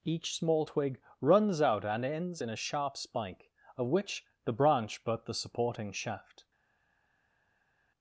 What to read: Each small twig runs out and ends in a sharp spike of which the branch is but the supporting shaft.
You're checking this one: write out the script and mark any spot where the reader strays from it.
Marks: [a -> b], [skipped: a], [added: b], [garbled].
Each small twig runs out and ends in a sharp spike of which the branch [skipped: is] but the supporting shaft.